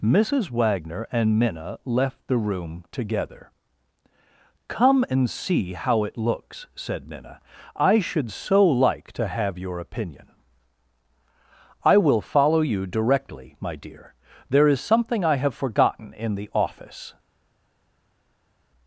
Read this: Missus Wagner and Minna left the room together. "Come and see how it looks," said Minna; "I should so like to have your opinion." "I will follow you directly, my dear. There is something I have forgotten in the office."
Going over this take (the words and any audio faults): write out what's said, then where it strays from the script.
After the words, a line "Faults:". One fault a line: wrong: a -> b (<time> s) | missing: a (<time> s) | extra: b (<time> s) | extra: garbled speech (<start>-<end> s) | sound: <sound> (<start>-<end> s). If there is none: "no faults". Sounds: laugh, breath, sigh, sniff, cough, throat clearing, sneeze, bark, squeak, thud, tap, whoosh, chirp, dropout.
Missus Wagner and Minna left the room together. "Come and see how it looks," said Minna; "I should so like to have your opinion." "I will follow you directly, my dear. There is something I have forgotten in the office."
Faults:
no faults